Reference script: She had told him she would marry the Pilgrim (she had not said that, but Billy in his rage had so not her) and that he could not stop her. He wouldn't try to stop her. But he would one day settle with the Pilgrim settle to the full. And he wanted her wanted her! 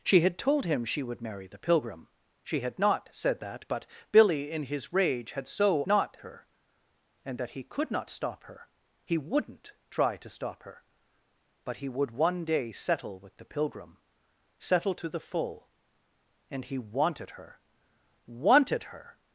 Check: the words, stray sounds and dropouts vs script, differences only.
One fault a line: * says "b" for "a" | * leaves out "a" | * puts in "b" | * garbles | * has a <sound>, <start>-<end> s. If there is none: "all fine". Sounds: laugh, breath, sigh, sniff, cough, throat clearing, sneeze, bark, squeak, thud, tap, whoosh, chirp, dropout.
all fine